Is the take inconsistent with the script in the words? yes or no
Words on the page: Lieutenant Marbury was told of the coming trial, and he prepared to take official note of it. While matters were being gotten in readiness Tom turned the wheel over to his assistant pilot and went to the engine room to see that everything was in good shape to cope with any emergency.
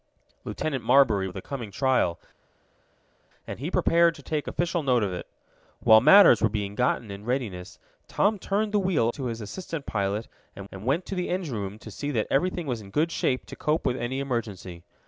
yes